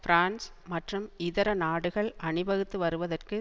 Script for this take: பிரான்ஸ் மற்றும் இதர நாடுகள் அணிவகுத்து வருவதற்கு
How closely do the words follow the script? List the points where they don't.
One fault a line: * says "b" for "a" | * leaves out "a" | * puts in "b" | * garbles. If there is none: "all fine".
all fine